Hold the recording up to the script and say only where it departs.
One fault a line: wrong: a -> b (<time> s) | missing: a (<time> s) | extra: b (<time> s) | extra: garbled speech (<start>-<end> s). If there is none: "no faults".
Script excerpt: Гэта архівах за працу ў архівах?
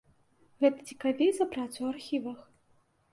wrong: архівах -> цікавей (0.9 s)